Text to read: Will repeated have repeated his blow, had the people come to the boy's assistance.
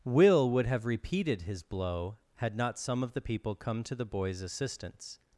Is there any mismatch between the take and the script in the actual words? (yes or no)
yes